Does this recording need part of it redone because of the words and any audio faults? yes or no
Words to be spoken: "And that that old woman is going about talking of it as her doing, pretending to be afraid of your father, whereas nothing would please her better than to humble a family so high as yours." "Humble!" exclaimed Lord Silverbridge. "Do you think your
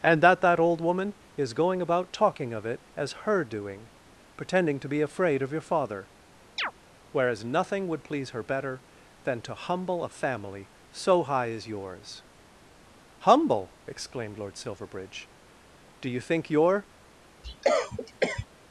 yes